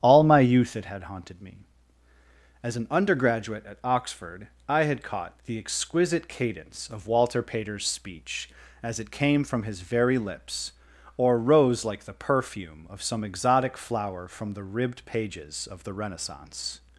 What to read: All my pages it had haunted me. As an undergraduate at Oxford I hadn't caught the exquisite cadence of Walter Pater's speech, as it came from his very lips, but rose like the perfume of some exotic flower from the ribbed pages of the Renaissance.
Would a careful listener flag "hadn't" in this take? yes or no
yes